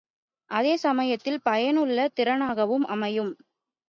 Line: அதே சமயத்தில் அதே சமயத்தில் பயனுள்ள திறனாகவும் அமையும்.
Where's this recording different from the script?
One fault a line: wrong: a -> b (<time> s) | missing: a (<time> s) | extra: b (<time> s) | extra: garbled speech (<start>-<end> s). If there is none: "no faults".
missing: அதே சமயத்தில் (1.4 s)